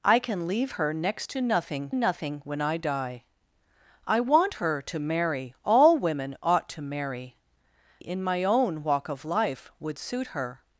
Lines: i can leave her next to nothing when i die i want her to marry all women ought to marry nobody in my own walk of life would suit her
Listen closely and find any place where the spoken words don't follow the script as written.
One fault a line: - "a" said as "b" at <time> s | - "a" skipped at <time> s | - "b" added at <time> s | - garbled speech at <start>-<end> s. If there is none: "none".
- "nothing" added at 1.9 s
- "nobody" skipped at 7.4 s